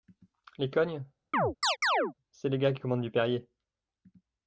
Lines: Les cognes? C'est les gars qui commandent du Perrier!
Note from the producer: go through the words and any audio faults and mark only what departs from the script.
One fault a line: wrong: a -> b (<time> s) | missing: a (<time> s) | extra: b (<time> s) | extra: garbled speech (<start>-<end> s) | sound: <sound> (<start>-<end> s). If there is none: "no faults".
sound: chirp (1.3-2.1 s)